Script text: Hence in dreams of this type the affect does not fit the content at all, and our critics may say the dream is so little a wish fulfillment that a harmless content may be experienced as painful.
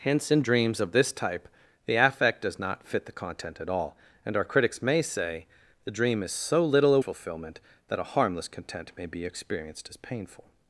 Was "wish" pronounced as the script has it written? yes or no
no